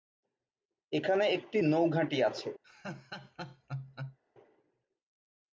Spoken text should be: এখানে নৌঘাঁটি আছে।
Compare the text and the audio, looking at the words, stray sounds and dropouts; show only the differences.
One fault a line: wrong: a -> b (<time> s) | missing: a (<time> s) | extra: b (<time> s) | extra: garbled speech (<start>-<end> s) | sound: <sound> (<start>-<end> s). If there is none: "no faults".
extra: একটি (1.3 s)
sound: laugh (2.6-4.2 s)